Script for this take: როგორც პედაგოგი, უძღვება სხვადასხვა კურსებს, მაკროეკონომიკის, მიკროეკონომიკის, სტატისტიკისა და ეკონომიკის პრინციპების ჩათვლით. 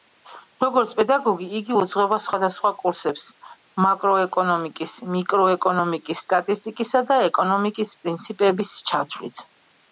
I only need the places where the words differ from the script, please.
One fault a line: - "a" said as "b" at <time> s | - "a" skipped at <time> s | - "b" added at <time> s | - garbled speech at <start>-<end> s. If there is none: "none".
- "იგი" added at 1.6 s